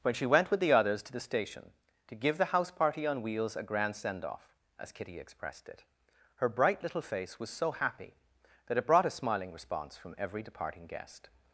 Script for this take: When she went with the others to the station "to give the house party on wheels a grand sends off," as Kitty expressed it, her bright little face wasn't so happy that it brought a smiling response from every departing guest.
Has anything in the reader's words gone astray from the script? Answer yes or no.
yes